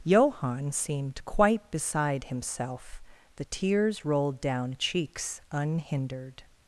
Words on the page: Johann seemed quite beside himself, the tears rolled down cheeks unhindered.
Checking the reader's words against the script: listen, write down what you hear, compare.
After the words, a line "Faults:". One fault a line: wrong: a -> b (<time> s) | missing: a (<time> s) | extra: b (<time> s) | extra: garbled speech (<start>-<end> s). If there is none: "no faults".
Johann seemed quite beside himself, the tears rolled down cheeks unhindered.
Faults:
no faults